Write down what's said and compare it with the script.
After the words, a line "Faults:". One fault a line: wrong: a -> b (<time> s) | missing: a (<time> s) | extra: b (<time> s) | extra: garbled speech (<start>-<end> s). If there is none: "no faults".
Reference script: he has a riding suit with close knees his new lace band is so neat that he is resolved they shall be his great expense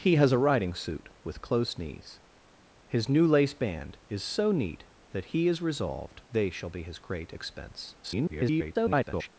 he has a riding suit with close knees his new lace band is so neat that he is resolved they shall be his great expense [garbled]
Faults:
extra: garbled speech (8.0-9.3 s)